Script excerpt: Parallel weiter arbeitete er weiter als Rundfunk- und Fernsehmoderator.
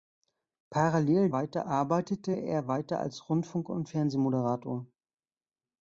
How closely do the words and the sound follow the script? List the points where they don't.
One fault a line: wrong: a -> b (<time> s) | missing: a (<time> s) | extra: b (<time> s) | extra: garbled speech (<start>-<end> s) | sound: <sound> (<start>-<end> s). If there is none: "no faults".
no faults